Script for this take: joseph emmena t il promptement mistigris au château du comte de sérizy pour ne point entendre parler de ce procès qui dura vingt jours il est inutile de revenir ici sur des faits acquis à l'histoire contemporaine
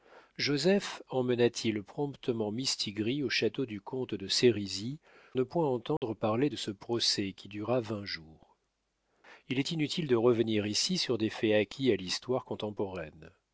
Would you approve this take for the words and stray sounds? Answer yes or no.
no